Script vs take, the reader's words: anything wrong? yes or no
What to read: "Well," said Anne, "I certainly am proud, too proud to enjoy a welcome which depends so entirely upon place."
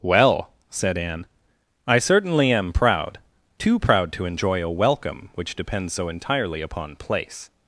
no